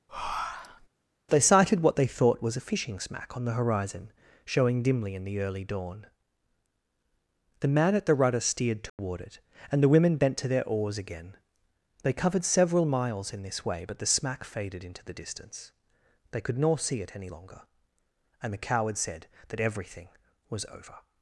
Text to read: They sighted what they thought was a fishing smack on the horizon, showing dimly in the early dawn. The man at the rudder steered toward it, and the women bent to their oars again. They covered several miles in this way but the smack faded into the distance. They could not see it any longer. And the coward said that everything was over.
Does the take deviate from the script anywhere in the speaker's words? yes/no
yes